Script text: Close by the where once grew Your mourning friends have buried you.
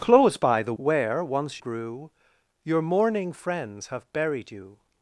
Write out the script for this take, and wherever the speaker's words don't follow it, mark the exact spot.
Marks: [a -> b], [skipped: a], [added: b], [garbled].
Close by the where once grew Your mourning friends have buried you.